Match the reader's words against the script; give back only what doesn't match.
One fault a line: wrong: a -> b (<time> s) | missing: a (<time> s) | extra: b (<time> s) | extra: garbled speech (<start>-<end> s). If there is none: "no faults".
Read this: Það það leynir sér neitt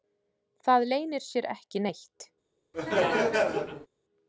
missing: það (0.8 s)
extra: ekki (1.6 s)